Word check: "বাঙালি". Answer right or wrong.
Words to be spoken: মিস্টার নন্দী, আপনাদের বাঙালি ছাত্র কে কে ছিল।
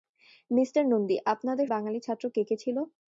right